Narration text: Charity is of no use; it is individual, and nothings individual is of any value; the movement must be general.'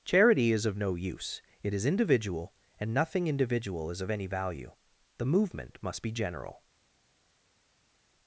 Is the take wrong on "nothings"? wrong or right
wrong